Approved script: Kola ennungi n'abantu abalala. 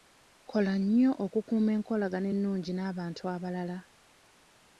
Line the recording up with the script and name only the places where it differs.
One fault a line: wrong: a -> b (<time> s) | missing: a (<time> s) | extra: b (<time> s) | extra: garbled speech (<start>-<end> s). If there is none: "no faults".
extra: nnyo okukuuma enkolagana (0.8 s)